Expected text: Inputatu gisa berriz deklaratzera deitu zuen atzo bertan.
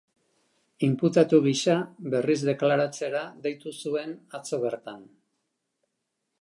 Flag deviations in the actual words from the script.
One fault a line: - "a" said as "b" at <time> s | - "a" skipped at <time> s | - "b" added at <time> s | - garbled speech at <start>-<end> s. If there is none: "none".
none